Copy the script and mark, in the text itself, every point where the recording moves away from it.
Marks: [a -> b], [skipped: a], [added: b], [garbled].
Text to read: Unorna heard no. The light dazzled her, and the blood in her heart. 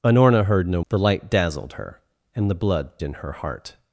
Unorna heard no. The light dazzled her, and the blood in her heart.